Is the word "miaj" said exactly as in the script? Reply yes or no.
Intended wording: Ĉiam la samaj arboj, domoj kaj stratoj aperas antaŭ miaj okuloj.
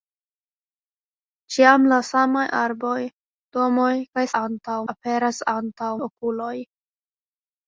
no